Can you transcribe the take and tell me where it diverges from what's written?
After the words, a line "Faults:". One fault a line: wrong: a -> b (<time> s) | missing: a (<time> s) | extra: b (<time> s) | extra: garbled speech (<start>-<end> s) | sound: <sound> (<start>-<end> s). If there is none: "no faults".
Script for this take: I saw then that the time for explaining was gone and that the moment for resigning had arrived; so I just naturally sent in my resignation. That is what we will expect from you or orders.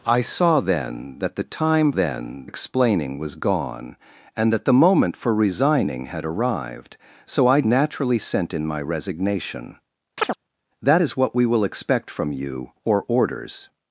I saw then that the time then explaining was gone and that the moment for resigning had arrived; so I naturally sent in my resignation. That is what we will expect from you or orders.
Faults:
wrong: for -> then (1.9 s)
missing: just (7.6 s)
sound: chirp (10.2-10.4 s)